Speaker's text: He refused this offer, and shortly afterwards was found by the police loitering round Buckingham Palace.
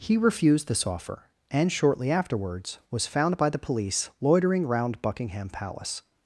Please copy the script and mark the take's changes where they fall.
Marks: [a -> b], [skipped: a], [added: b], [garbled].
He refused this offer, and shortly afterwards was found by the police loitering round Buckingham Palace.